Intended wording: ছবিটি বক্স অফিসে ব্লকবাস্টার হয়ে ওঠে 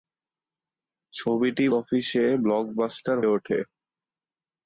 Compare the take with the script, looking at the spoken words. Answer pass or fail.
fail